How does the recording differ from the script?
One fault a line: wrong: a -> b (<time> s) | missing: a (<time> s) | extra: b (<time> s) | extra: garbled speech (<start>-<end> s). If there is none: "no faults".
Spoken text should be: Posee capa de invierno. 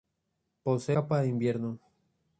no faults